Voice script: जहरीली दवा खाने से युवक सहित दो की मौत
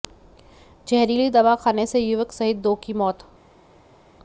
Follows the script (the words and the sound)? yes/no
yes